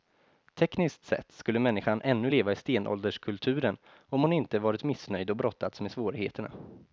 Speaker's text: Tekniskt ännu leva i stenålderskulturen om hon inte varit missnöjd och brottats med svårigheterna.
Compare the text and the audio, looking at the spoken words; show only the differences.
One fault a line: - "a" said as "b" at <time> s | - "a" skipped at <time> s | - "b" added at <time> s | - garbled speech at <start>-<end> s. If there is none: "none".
- "sett skulle människan" added at 1.1 s